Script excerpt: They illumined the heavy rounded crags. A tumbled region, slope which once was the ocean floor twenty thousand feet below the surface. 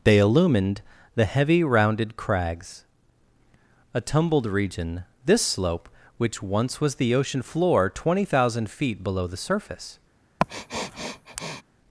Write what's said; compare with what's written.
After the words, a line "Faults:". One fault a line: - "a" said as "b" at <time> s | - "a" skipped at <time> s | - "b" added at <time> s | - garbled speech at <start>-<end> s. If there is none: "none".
They illumined the heavy rounded crags. A tumbled region, this slope which once was the ocean floor twenty thousand feet below the surface.
Faults:
- "this" added at 5.2 s